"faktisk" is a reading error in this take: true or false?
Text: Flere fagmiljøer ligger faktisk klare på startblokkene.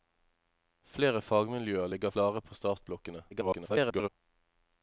true